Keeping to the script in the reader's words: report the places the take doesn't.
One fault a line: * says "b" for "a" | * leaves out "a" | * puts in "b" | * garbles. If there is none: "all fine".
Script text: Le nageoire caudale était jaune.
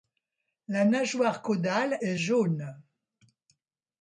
* says "La" for "Le"
* says "est" for "était"